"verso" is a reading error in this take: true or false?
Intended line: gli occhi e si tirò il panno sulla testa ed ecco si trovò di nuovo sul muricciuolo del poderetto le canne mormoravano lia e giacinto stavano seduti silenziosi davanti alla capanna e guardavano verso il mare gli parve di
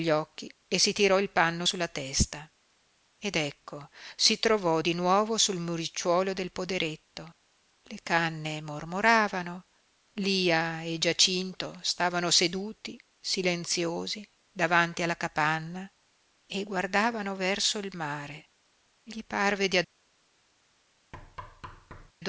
false